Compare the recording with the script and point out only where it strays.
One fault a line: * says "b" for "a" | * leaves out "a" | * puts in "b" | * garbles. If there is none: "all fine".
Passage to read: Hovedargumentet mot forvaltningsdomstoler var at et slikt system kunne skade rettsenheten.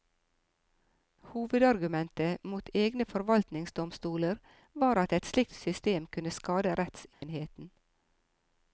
* puts in "egne"